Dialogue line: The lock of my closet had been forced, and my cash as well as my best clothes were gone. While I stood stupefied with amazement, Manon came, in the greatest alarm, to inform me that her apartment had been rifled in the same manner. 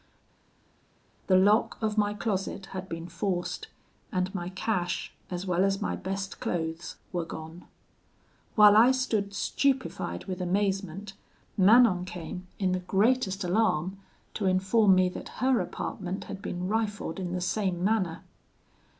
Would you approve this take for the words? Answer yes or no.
yes